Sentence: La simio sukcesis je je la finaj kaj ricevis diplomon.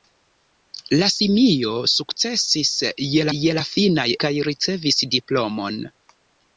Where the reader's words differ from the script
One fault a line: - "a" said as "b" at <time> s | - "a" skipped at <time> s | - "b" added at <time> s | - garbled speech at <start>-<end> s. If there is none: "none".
none